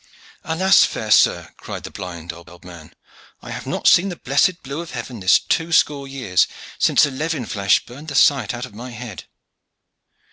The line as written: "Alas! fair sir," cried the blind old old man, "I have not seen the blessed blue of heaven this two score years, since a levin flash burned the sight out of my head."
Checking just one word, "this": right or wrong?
right